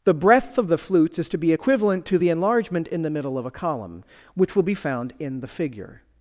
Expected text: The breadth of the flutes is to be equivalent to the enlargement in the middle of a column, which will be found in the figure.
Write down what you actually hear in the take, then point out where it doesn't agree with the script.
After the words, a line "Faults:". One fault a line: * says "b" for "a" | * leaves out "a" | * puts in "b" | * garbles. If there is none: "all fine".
The breadth of the flutes is to be equivalent to the enlargement in the middle of a column, which will be found in the figure.
Faults:
all fine